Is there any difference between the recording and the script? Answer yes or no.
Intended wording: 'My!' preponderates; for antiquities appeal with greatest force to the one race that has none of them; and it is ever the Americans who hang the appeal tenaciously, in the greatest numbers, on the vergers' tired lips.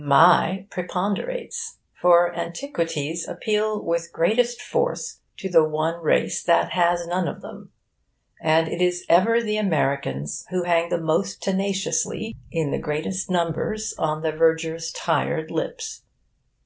yes